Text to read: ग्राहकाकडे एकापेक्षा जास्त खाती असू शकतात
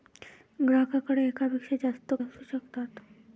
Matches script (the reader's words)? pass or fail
fail